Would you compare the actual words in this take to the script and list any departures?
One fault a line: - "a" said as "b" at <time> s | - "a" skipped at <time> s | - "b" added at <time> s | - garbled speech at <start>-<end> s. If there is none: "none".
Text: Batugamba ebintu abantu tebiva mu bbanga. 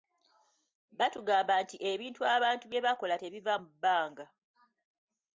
- "nti" added at 1.6 s
- "bye bakola" added at 2.7 s